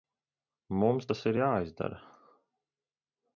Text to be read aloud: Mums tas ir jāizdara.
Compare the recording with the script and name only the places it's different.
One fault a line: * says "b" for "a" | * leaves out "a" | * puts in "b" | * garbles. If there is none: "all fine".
all fine